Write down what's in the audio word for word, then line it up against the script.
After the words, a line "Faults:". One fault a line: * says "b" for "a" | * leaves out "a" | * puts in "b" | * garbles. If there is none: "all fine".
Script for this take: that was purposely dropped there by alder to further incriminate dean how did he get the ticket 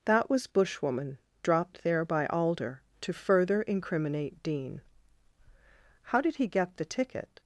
that was bushwoman dropped there by alder to further incriminate dean how did he get the ticket
Faults:
* says "bushwoman" for "purposely"